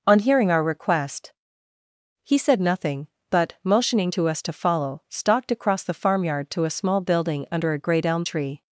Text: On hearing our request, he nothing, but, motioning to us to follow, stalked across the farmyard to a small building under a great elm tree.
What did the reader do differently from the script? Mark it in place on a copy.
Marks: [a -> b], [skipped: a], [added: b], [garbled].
On hearing our request, he [added: said] nothing, but, motioning to us to follow, stalked across the farmyard to a small building under a great elm tree.